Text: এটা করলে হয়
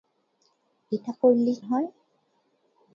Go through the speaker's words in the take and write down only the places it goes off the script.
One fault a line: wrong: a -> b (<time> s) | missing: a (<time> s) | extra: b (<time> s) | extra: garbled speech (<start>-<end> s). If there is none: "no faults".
no faults